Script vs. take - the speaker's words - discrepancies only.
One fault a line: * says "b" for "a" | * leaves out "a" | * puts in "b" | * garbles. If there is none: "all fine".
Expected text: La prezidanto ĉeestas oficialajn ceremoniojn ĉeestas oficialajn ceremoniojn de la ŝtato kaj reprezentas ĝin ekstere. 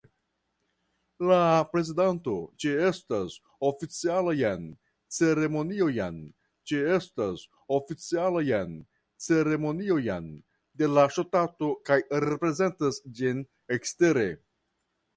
all fine